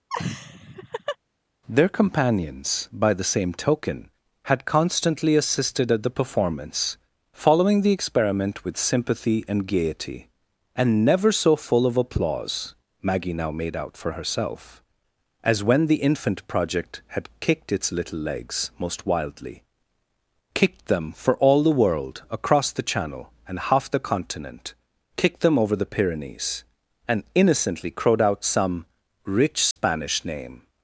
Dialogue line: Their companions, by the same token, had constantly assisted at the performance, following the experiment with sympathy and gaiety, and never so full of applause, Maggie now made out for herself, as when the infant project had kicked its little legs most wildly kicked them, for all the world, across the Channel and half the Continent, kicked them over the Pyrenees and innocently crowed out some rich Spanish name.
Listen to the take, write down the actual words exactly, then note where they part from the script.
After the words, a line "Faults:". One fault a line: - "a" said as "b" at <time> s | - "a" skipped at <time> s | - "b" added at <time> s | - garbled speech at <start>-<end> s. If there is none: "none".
Their companions, by the same token, had constantly assisted at the performance, following the experiment with sympathy and gaiety, and never so full of applause, Maggie now made out for herself, as when the infant project had kicked its little legs most wildly kicked them, for all the world, across the Channel and half the Continent, kicked them over the Pyrenees and innocently crowed out some rich Spanish name.
Faults:
none